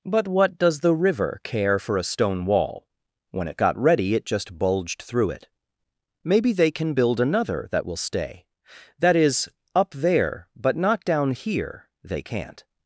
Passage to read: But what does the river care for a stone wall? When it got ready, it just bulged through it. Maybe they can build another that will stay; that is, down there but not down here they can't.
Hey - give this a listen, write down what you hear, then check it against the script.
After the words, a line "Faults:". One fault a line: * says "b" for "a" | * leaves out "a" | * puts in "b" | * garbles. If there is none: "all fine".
But what does the river care for a stone wall? When it got ready, it just bulged through it. Maybe they can build another that will stay; that is, up there but not down here they can't.
Faults:
* says "up" for "down"